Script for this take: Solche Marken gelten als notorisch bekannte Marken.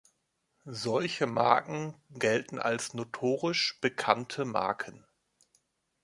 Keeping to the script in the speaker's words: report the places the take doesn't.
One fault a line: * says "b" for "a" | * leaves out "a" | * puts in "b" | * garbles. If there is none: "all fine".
all fine